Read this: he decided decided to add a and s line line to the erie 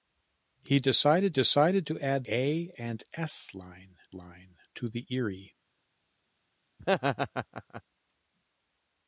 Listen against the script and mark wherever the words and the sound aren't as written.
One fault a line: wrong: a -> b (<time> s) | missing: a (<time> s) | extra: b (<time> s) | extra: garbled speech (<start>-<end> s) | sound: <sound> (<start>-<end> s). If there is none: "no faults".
sound: laugh (6.8-7.8 s)